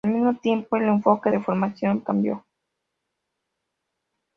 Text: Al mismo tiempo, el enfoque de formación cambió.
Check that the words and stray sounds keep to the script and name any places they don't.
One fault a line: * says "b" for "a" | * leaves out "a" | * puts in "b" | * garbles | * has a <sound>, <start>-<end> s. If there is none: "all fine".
all fine